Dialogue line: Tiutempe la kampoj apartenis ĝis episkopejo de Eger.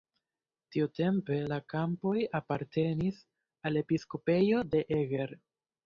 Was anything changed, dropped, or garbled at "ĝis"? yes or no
yes